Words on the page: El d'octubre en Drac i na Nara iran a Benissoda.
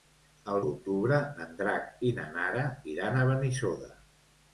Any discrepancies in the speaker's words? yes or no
no